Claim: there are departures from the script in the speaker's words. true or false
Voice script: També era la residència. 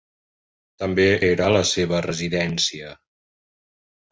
true